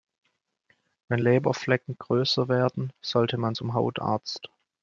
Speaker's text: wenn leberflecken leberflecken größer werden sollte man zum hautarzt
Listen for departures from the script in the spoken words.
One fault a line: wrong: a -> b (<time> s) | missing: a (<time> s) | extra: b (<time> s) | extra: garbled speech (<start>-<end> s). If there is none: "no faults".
missing: leberflecken (2.0 s)